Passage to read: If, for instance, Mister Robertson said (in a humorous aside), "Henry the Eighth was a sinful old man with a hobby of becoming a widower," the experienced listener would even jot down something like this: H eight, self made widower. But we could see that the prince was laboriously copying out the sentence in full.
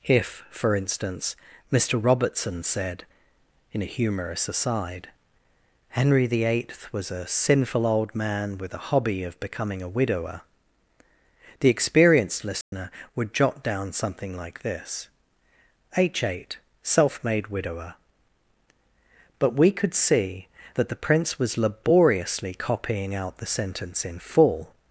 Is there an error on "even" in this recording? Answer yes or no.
yes